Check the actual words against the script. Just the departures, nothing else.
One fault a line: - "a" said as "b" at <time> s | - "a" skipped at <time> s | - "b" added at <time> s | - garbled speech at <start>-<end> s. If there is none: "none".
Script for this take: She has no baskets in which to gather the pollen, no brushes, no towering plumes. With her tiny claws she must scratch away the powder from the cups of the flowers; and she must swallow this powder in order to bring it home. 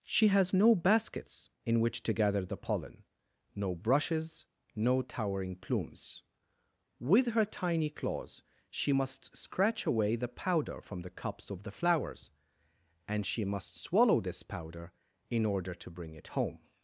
none